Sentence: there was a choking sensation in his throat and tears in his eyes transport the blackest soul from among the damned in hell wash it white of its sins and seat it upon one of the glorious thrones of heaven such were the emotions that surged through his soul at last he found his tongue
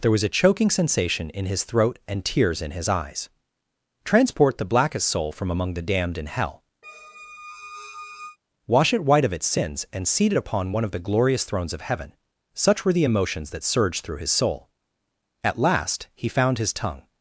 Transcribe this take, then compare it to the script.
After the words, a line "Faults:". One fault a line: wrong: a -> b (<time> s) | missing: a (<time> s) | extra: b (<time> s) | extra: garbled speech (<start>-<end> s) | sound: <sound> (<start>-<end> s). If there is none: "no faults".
there was a choking sensation in his throat and tears in his eyes transport the blackest soul from among the damned in hell wash it white of its sins and seat it upon one of the glorious thrones of heaven such were the emotions that surged through his soul at last he found his tongue
Faults:
sound: squeak (6.8-8.4 s)